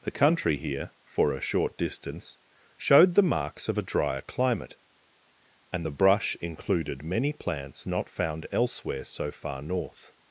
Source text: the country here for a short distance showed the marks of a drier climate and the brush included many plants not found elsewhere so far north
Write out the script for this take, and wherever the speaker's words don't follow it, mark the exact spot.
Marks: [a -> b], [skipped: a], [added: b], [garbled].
the country here for a short distance showed the marks of a drier climate and the brush included many plants not found elsewhere so far north